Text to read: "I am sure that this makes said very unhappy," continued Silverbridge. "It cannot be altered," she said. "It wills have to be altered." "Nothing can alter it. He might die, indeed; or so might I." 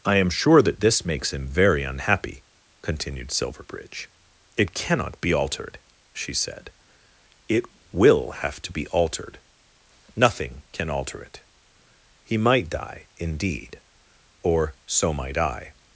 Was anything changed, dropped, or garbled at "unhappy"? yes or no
no